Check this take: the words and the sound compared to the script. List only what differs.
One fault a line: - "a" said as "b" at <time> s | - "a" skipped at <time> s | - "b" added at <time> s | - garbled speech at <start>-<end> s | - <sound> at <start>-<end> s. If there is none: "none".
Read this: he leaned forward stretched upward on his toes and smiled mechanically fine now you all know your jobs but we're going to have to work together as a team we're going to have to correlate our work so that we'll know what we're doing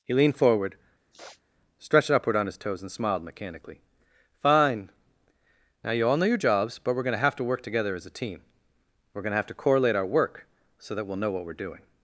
- sniff at 1.1-1.4 s